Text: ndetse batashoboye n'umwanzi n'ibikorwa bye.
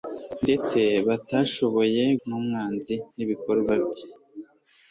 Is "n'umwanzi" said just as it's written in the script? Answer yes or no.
yes